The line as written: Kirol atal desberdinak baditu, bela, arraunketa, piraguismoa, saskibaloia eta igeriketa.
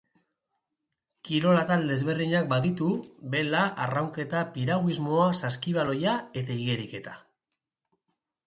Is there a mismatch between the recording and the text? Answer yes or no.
no